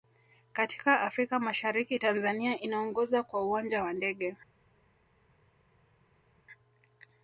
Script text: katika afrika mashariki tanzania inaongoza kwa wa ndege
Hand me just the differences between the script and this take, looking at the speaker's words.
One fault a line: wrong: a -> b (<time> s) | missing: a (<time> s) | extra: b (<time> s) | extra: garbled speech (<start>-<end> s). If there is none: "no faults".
extra: uwanja (3.5 s)